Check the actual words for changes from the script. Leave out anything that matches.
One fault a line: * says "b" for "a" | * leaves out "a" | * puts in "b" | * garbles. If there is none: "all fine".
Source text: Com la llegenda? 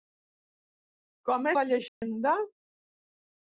all fine